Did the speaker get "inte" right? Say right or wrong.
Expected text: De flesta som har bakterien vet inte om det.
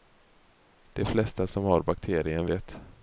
wrong